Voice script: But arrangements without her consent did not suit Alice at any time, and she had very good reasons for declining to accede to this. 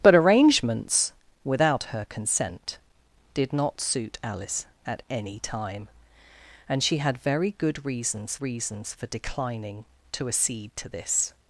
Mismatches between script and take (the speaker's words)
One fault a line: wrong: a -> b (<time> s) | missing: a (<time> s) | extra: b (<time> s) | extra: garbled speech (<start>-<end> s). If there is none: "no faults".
extra: reasons (8.4 s)